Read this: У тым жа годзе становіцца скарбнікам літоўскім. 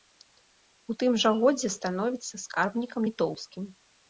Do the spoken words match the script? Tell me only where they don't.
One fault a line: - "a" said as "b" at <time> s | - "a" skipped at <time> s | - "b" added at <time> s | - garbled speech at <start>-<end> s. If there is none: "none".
none